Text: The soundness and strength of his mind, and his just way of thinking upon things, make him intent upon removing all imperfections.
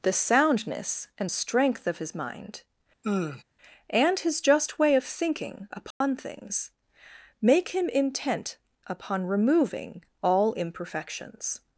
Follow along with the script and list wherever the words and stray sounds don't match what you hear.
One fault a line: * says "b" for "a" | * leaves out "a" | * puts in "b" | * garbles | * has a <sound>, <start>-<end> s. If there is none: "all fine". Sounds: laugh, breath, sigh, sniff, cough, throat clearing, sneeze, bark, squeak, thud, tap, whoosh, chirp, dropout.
* has a sigh, 3.0-3.4 s
* has a dropout, 5.9-6.0 s